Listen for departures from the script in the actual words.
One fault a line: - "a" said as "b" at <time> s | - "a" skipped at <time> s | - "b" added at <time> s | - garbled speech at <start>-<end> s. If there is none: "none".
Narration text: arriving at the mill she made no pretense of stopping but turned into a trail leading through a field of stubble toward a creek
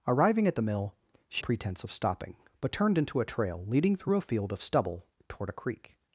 - "made no" skipped at 1.4 s